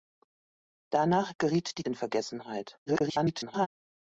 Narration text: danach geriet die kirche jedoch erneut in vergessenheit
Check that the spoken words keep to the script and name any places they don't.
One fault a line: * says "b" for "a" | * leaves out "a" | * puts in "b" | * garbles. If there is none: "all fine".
* leaves out "kirche jedoch erneut"
* garbles